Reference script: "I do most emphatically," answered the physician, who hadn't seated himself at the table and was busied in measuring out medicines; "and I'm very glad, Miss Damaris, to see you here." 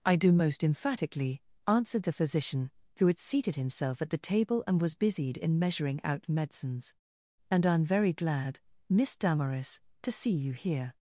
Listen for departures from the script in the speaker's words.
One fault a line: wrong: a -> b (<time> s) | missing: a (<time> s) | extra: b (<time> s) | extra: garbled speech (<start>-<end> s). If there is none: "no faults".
wrong: hadn't -> had (3.1 s)